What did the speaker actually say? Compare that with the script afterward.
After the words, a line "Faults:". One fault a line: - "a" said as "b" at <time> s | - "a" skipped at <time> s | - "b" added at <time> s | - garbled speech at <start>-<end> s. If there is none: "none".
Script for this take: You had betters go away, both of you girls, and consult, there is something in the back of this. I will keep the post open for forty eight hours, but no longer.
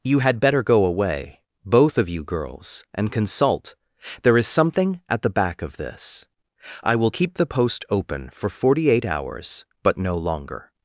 You had better go away, both of you girls, and consult, there is something at the back of this. I will keep the post open for forty eight hours, but no longer.
Faults:
- "betters" said as "better" at 0.4 s
- "in" said as "at" at 5.1 s